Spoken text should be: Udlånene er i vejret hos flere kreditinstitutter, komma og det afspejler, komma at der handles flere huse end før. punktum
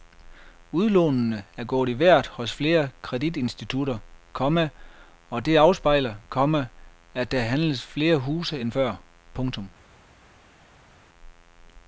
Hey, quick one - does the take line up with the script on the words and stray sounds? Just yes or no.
no